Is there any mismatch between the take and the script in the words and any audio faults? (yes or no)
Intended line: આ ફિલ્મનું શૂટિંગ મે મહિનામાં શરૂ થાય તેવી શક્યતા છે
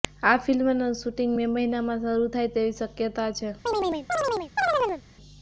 yes